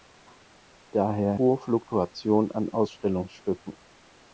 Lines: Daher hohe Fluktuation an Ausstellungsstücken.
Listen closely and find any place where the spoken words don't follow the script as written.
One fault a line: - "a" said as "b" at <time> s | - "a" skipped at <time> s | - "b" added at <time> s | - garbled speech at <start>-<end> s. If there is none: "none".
none